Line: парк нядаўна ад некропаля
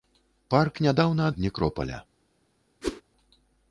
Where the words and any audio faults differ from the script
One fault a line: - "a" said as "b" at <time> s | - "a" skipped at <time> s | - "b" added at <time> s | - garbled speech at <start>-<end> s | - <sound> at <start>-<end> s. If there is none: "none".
- whoosh at 2.8-3.0 s